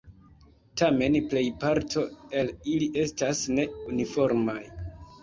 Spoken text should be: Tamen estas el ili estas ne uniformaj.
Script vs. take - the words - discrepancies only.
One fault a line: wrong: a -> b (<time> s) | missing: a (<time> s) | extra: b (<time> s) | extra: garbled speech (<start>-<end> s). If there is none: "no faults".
wrong: estas -> plejparto (1.3 s)